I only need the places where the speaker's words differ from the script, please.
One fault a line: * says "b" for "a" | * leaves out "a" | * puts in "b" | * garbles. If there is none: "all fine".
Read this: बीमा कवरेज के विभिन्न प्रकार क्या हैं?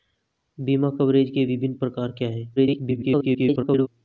* garbles